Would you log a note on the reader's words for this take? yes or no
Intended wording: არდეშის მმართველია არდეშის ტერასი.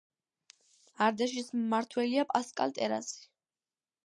yes